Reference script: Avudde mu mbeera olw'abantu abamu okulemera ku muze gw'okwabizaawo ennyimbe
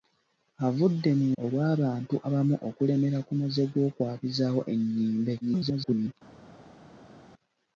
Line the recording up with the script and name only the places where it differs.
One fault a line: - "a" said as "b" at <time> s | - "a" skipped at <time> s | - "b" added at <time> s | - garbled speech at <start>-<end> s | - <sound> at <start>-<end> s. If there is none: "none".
- "mbeera" skipped at 1.3 s
- garbled speech at 5.4-6.1 s